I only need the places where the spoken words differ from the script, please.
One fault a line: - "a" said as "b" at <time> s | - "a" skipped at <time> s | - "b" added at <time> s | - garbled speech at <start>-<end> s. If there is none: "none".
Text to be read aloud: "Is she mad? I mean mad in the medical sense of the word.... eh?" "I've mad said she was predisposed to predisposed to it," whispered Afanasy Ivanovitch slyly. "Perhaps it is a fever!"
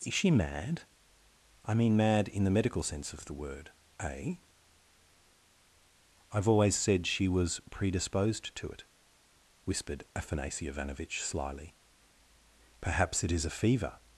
- "mad" said as "always" at 6.5 s
- "predisposed to" skipped at 8.7 s